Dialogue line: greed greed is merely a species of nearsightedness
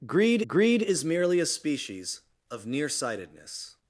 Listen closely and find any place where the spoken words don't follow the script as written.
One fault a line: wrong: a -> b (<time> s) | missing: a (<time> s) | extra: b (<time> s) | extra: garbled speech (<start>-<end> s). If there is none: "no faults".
no faults